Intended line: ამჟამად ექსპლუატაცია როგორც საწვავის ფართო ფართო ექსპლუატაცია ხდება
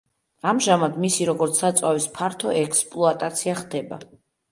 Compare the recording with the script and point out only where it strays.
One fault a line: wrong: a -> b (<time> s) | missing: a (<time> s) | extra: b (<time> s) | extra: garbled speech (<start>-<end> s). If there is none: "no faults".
wrong: ექსპლუატაცია -> მისი (1.0 s)
missing: ფართო (2.5 s)